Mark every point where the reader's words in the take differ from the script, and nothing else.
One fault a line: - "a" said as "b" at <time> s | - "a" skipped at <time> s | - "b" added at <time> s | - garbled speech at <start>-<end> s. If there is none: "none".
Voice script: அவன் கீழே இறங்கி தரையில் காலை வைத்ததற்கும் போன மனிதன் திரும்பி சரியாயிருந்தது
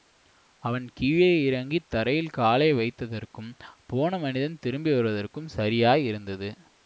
- "வருவதற்கும்" added at 4.9 s